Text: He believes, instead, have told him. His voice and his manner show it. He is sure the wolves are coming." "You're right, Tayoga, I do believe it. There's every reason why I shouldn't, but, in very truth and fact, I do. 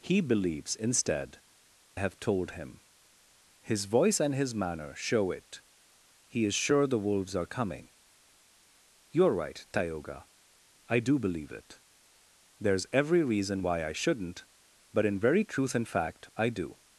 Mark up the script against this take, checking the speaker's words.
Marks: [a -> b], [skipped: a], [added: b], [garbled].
He believes, instead, have told him. His voice and his manner show it. He is sure the wolves are coming." "You're right, Tayoga, I do believe it. There's every reason why I shouldn't, but, in very truth and fact, I do.